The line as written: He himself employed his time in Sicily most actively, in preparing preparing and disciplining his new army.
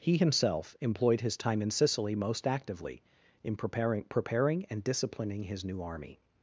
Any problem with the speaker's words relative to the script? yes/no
no